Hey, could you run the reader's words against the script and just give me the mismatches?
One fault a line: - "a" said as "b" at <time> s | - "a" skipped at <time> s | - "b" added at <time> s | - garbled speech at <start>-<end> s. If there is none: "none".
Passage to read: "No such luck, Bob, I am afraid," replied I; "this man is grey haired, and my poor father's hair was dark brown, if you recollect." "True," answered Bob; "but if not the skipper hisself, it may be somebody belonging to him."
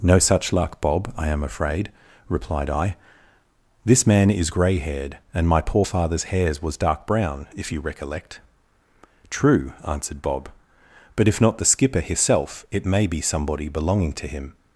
- "hair" said as "hairs" at 6.2 s